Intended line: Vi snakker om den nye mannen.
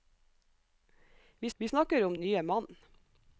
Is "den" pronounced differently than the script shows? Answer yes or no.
yes